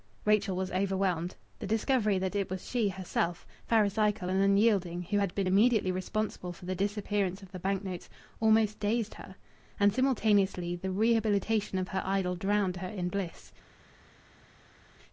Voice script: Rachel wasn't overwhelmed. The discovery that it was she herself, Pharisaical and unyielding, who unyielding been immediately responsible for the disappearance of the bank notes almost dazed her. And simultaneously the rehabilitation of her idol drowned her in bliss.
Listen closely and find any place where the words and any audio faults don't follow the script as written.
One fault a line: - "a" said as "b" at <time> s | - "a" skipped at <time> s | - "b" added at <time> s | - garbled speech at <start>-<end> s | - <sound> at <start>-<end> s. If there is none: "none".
- "wasn't" said as "was" at 0.6 s
- "unyielding" said as "had" at 5.2 s